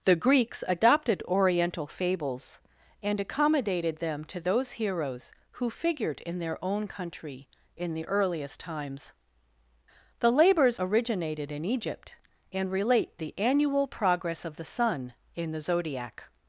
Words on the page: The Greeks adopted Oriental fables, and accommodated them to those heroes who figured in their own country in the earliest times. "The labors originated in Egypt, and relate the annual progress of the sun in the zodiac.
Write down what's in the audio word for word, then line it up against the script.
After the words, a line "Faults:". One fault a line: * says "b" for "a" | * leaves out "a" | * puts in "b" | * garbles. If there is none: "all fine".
The Greeks adopted Oriental fables, and accommodated them to those heroes who figured in their own country in the earliest times. "The labors originated in Egypt, and relate the annual progress of the sun in the zodiac.
Faults:
all fine